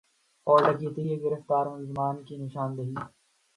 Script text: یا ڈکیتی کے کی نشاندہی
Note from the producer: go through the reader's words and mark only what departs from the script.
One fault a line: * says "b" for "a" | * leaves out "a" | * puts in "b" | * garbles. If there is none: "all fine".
* says "اور" for "یا"
* puts in "گرفتار ملزمان"